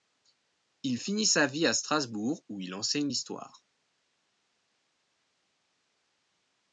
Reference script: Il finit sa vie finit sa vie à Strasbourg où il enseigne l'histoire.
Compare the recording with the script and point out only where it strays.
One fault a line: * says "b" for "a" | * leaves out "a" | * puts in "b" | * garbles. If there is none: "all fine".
* leaves out "finit sa vie"